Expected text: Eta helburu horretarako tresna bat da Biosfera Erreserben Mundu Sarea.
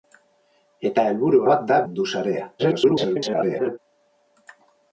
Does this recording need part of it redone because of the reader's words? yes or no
yes